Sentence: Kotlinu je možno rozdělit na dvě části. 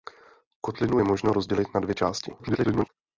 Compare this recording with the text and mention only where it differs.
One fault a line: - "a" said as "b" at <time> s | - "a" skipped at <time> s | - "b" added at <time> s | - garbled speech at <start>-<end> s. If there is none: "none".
- garbled speech at 2.4-2.9 s